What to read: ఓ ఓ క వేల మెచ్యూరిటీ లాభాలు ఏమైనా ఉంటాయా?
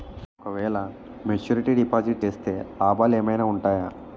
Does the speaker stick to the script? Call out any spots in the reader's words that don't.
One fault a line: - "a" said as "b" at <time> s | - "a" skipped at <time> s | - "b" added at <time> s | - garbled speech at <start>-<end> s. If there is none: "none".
- "ఓ" skipped at 0.5 s
- "డిపాజిట్ చేస్తే" added at 1.8 s